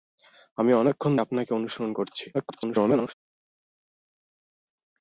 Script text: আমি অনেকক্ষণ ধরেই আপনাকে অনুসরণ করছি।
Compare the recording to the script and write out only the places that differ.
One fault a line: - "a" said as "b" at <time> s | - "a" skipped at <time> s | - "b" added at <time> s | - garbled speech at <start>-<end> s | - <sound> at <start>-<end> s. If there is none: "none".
- "ধরেই" skipped at 1.1 s
- garbled speech at 2.3-3.1 s